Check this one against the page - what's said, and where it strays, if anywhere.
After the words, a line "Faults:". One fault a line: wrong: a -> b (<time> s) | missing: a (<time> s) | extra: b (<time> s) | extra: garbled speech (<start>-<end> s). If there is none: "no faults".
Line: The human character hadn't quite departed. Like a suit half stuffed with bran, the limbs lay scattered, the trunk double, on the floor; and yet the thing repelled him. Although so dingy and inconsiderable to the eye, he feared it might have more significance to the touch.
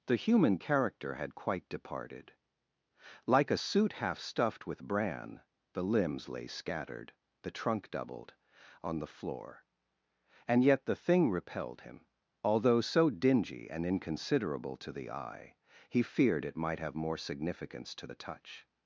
The human character had quite departed. Like a suit half stuffed with bran, the limbs lay scattered, the trunk doubled, on the floor; and yet the thing repelled him. Although so dingy and inconsiderable to the eye, he feared it might have more significance to the touch.
Faults:
wrong: hadn't -> had (1.1 s)
wrong: double -> doubled (7.9 s)